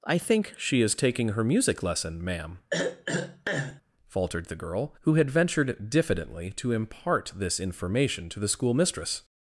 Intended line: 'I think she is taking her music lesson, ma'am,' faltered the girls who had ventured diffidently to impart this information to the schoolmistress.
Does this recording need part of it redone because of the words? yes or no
yes